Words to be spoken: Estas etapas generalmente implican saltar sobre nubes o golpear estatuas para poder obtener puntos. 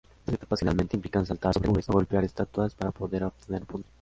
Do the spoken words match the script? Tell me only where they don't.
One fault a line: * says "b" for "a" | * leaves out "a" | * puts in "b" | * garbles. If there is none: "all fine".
all fine